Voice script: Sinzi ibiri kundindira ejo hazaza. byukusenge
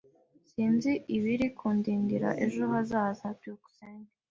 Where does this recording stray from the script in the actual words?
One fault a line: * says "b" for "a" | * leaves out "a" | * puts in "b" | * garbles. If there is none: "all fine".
all fine